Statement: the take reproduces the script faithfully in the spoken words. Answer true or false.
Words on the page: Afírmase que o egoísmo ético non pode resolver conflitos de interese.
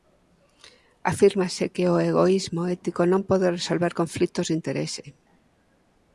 true